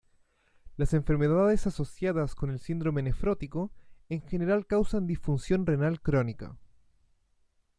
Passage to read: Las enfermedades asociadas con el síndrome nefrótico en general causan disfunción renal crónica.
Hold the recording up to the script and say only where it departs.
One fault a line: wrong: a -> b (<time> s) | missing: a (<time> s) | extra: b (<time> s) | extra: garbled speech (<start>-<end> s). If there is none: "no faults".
no faults